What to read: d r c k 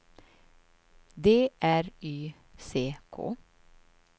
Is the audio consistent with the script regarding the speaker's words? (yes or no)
no